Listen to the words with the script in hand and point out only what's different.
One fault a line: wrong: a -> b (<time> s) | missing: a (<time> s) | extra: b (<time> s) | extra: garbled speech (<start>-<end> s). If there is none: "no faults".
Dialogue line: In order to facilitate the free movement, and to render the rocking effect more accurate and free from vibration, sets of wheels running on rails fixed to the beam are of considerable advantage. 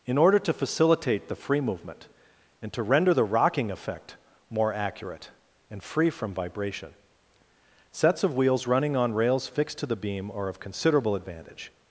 no faults